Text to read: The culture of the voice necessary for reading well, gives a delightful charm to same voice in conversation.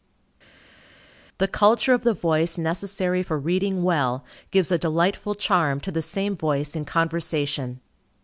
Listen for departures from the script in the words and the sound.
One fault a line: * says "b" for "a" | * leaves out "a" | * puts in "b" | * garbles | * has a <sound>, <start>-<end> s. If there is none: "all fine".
* puts in "the"